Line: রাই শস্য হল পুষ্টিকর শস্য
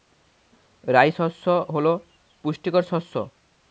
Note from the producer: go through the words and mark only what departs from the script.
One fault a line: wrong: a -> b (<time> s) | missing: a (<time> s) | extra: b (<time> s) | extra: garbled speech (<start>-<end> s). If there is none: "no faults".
no faults